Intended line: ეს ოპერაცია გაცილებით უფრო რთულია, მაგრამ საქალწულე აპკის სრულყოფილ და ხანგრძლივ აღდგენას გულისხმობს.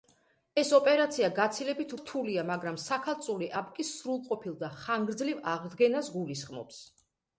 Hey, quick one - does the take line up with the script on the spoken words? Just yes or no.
no